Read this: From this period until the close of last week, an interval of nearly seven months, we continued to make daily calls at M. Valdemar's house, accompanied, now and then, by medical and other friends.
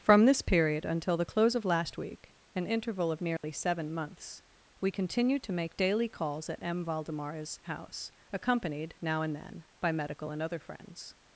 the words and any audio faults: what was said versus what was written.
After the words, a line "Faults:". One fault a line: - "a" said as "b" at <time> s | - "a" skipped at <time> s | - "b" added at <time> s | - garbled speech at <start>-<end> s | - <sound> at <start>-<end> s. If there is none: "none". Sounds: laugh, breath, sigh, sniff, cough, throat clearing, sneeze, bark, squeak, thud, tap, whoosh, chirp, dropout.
From this period until the close of last week, an interval of nearly seven months, we continued to make daily calls at M. Valdemar's house, accompanied, now and then, by medical and other friends.
Faults:
- dropout at 3.4-3.4 s